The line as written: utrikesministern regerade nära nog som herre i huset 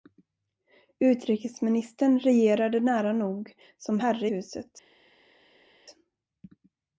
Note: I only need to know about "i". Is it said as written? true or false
false